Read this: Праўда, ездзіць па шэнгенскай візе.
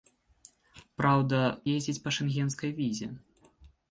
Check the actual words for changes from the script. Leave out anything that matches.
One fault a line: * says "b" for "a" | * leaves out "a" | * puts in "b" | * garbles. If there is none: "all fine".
all fine